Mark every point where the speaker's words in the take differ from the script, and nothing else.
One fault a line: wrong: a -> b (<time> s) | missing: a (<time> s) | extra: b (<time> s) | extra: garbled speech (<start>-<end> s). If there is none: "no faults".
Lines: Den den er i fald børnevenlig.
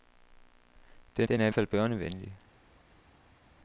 no faults